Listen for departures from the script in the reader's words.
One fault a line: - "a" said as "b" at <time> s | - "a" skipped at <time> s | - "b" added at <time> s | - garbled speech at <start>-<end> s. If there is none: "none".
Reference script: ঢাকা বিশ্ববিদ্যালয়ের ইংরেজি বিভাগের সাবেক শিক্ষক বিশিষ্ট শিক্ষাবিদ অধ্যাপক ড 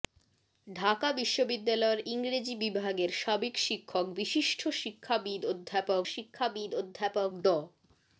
- "শিক্ষাবিদ অধ্যাপক" added at 6.1 s